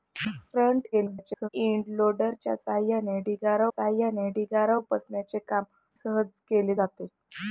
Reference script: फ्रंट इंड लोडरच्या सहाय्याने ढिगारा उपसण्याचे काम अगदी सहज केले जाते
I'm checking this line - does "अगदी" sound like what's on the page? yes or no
no